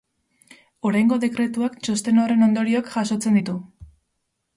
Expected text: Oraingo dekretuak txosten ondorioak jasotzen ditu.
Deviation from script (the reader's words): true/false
true